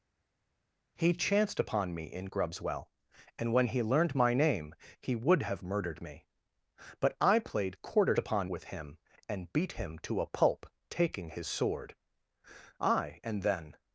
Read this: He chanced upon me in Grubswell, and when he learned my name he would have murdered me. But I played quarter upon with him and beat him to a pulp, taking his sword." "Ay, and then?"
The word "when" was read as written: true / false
true